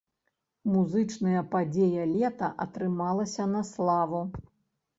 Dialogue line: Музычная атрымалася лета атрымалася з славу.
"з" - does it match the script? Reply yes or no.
no